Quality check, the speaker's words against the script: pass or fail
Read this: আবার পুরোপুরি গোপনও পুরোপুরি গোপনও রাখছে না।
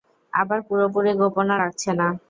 fail